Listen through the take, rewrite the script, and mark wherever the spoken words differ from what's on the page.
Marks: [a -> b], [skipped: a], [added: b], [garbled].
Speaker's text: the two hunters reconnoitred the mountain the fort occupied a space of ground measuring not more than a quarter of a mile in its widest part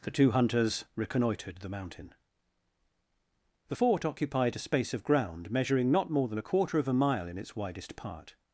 the two hunters reconnoitred the mountain the fort occupied a space of ground measuring not more than a quarter of a mile in its widest part